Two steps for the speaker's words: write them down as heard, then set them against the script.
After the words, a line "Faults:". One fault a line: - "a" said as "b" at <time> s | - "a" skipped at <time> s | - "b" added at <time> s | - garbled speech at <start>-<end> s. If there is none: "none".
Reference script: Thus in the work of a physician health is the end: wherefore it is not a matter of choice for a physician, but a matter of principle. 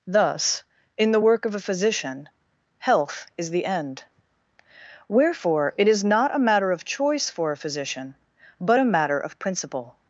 Thus in the work of a physician health is the end: wherefore it is not a matter of choice for a physician, but a matter of principle.
Faults:
none